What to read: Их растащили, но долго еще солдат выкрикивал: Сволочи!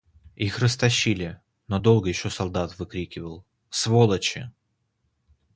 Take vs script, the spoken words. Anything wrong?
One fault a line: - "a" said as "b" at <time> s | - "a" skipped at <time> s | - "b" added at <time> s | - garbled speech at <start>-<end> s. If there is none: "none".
none